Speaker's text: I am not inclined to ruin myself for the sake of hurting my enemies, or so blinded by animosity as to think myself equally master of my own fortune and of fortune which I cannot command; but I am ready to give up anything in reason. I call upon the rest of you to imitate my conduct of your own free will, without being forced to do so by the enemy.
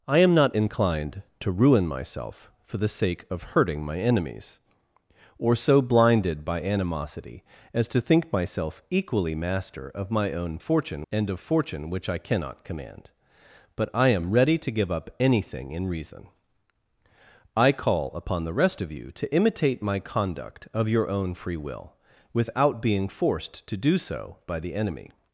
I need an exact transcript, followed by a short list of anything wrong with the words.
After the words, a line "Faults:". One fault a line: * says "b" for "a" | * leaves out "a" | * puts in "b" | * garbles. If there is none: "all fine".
I am not inclined to ruin myself for the sake of hurting my enemies, or so blinded by animosity as to think myself equally master of my own fortune and of fortune which I cannot command; but I am ready to give up anything in reason. I call upon the rest of you to imitate my conduct of your own free will, without being forced to do so by the enemy.
Faults:
all fine